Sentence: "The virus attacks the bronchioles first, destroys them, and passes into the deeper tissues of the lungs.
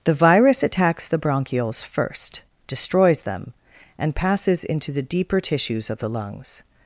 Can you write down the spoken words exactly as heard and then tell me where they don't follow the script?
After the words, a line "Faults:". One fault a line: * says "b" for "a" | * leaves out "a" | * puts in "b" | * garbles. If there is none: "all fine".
"The virus attacks the bronchioles first, destroys them, and passes into the deeper tissues of the lungs.
Faults:
all fine